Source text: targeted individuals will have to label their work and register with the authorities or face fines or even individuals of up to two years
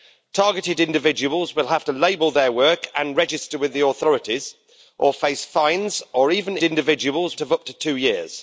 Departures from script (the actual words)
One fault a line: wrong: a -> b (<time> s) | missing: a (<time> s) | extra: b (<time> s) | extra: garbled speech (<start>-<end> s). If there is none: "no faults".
no faults